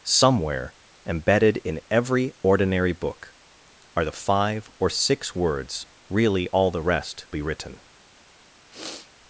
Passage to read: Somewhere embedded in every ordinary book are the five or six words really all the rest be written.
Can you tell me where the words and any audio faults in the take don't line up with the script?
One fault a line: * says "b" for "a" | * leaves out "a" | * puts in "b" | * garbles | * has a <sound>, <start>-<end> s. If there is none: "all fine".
* has a sniff, 8.7-9.1 s